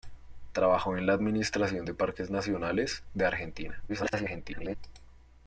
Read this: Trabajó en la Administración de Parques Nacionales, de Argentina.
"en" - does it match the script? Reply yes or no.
yes